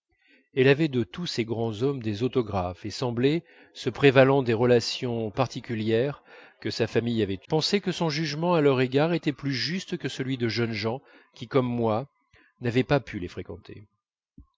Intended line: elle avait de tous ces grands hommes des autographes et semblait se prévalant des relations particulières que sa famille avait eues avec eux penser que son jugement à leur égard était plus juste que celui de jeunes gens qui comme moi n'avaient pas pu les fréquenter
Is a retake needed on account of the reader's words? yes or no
yes